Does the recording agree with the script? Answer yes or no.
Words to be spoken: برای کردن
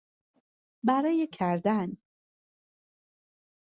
yes